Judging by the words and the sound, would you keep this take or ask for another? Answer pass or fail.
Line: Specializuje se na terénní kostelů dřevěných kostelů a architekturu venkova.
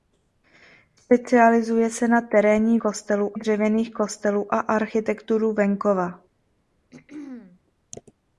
fail